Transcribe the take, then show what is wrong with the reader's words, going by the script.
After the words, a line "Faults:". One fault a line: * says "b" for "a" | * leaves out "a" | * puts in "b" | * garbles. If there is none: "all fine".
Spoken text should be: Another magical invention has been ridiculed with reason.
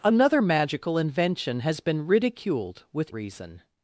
Another magical invention has been ridiculed with reason.
Faults:
all fine